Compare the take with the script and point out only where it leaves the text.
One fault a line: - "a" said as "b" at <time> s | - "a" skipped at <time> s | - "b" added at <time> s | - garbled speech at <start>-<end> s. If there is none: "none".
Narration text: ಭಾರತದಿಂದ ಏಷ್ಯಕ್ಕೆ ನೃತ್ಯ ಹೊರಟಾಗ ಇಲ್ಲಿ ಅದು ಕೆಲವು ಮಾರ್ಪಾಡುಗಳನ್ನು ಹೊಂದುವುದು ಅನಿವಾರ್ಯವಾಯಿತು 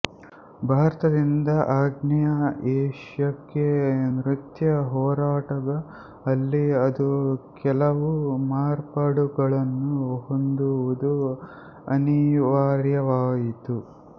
- "ಆಗ್ನೇಯ" added at 1.7 s
- "ಇಲ್ಲಿ" said as "ಅಲ್ಲಿ" at 6.3 s